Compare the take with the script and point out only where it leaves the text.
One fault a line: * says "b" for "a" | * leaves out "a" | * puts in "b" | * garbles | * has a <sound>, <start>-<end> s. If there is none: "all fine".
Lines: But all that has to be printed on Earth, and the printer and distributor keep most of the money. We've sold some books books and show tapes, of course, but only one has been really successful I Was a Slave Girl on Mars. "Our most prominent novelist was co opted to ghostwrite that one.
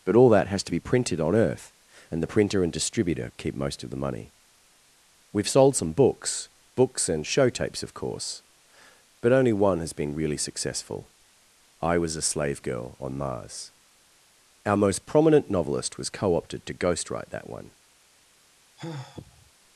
* has a sigh, 18.8-19.5 s